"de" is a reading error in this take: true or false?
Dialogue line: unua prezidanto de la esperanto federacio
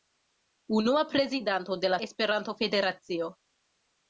false